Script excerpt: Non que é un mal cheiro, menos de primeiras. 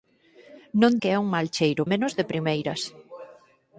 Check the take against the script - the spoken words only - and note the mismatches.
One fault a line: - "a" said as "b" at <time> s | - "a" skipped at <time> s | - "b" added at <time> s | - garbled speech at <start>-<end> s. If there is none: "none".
none